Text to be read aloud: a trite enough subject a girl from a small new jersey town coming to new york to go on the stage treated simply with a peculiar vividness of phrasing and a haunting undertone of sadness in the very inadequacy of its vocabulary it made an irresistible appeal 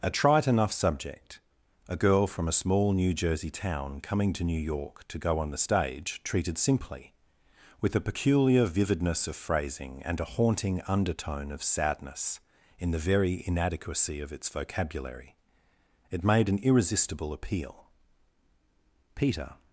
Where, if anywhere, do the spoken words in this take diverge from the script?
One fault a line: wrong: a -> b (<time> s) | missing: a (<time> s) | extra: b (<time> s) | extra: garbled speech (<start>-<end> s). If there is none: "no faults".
extra: peter (19.1 s)